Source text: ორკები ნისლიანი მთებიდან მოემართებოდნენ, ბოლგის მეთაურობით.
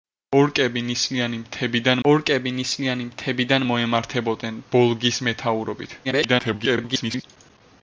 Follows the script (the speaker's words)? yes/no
no